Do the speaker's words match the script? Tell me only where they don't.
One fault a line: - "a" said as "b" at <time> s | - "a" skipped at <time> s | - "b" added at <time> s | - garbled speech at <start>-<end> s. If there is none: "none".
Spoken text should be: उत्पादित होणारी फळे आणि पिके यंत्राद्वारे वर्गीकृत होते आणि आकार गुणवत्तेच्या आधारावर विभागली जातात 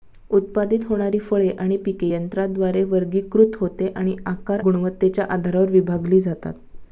none